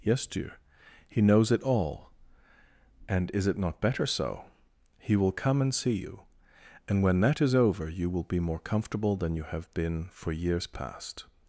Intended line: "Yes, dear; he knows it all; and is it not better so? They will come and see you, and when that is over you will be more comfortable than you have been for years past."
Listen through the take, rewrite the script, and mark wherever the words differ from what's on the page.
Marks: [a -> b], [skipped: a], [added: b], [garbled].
"Yes, dear; he knows it all; and is it not better so? [They -> He] will come and see you, and when that is over you will be more comfortable than you have been for years past."